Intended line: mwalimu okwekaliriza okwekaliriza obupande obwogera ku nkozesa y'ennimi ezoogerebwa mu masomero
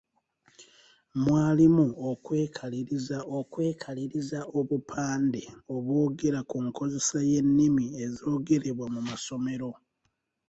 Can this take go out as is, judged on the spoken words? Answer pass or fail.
pass